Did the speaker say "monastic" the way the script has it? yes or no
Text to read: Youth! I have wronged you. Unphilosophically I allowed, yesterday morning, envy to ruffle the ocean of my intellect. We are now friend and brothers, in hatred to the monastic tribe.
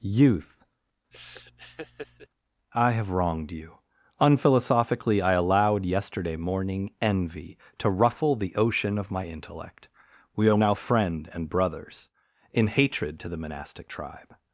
yes